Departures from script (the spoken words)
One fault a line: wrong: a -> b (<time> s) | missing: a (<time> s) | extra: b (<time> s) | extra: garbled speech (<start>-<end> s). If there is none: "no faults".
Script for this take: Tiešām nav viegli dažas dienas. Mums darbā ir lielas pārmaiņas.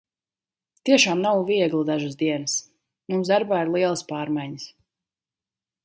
no faults